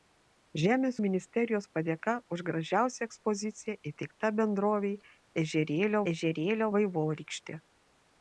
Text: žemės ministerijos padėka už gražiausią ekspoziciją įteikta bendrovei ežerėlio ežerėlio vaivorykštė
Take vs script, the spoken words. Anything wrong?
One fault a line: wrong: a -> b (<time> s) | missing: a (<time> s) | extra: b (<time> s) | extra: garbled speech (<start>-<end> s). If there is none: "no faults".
no faults